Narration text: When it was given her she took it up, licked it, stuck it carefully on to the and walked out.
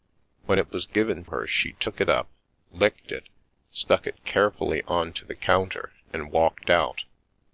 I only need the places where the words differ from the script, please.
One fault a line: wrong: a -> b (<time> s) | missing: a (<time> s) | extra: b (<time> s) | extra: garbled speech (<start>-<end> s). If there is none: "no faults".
extra: counter (5.3 s)